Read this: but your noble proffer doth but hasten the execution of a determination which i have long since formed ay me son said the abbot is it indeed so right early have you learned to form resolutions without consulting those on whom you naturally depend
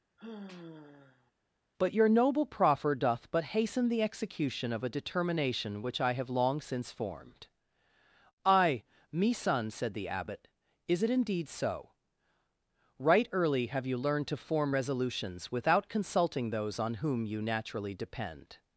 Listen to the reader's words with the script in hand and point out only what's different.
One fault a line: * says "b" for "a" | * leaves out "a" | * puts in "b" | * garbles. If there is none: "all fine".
all fine